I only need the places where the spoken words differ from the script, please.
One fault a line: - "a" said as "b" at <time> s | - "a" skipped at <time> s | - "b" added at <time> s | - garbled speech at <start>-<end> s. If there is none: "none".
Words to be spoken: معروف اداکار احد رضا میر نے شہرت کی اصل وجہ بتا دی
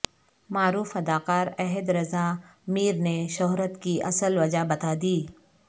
none